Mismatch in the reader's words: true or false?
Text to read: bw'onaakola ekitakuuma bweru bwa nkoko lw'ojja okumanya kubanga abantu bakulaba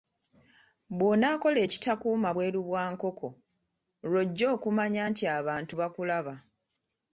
true